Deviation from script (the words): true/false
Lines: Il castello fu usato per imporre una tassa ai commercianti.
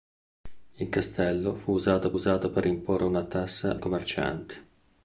true